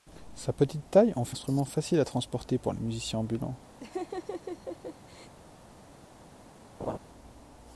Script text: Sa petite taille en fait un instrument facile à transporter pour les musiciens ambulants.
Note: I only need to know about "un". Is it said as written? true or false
false